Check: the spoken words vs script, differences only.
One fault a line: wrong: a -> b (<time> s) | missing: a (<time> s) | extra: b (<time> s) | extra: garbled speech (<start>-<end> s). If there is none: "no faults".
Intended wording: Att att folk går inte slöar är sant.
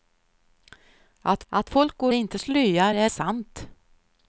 no faults